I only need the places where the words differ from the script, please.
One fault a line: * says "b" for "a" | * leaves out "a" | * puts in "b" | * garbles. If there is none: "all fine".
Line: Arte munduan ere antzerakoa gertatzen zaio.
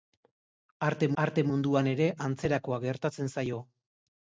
* puts in "arte"